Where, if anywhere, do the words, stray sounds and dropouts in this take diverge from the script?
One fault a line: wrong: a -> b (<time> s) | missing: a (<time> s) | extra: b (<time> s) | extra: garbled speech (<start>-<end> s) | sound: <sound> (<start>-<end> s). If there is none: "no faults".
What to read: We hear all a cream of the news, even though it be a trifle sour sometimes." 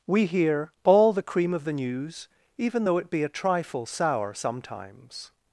wrong: a -> the (1.1 s)